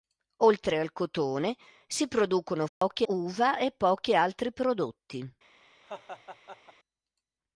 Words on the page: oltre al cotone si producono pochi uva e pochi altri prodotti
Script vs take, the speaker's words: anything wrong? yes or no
no